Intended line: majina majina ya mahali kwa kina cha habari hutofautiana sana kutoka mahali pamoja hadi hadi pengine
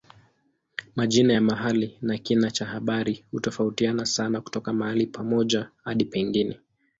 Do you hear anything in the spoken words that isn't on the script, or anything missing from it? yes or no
yes